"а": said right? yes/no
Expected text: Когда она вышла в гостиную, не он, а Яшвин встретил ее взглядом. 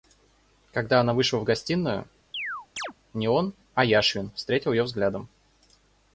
yes